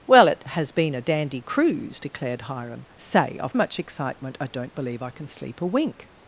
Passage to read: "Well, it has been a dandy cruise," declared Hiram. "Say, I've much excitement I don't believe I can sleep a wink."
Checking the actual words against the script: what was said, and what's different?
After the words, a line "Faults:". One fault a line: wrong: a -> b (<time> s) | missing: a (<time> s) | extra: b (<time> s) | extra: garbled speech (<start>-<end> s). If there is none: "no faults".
"Well, it has been a dandy cruise," declared Hiram. "Say, I've much excitement I don't believe I can sleep a wink."
Faults:
no faults